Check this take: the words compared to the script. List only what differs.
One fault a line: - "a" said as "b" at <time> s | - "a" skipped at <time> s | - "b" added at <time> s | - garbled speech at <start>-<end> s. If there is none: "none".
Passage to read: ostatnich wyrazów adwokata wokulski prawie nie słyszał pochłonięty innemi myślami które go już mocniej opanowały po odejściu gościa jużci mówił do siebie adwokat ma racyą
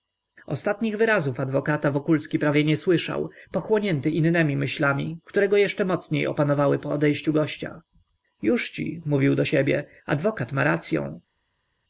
- "już" said as "jeszcze" at 5.6 s